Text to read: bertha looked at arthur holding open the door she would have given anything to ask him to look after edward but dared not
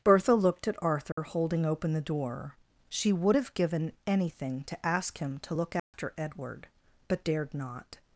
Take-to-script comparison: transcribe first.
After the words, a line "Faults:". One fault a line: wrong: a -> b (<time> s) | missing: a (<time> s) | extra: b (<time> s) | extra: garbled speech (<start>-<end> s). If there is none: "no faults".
bertha looked at arthur holding open the door she would have given anything to ask him to look after edward but dared not
Faults:
no faults